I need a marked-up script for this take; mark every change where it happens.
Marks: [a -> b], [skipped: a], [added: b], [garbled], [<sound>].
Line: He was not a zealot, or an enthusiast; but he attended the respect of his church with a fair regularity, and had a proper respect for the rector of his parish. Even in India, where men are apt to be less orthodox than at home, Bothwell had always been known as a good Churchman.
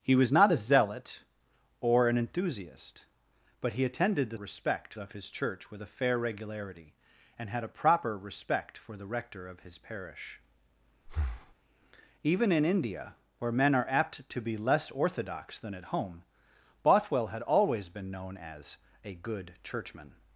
He was not a zealot, or an enthusiast; but he attended the respect of his church with a fair regularity, and had a proper respect for the rector of his parish. [breath] Even in India, where men are apt to be less orthodox than at home, Bothwell had always been known as a good Churchman.